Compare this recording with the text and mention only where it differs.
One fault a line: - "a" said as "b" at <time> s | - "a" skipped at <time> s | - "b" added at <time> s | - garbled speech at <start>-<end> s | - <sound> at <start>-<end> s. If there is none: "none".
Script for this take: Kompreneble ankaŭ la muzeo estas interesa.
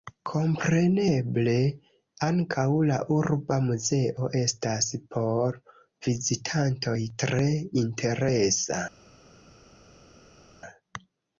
- "urba" added at 3.1 s
- "por vizitantoj tre" added at 5.1 s